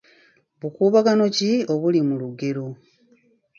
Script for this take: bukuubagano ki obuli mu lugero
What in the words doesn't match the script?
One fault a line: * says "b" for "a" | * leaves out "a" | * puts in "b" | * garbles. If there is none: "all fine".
all fine